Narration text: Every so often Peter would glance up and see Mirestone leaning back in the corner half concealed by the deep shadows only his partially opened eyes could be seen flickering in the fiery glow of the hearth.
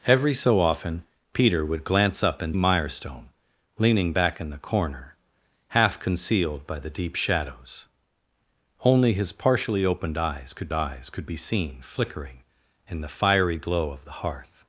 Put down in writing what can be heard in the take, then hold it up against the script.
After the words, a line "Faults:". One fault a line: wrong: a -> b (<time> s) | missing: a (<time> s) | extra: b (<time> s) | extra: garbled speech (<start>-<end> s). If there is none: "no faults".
Every so often Peter would glance up and Mirestone leaning back in the corner half concealed by the deep shadows only his partially opened eyes could eyes could be seen flickering in the fiery glow of the hearth.
Faults:
missing: see (2.6 s)
extra: eyes could (10.7 s)